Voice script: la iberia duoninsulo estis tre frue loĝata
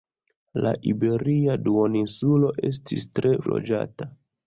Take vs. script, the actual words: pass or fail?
fail